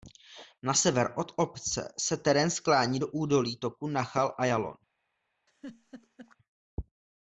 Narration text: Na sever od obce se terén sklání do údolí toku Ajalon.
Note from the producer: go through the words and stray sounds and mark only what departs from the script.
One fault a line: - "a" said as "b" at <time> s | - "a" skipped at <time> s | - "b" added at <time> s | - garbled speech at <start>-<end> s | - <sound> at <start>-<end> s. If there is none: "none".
- "Nachal" added at 3.9 s
- laugh at 5.5-6.4 s